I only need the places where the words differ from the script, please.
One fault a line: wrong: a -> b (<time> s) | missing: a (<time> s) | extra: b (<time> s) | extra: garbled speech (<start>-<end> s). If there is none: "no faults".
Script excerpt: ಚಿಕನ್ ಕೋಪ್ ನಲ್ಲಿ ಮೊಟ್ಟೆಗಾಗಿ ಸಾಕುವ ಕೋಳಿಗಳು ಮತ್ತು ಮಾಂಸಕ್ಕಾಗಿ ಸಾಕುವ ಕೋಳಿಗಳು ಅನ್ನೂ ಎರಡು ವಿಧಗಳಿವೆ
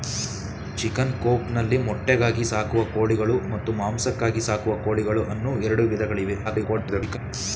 extra: garbled speech (6.4-7.2 s)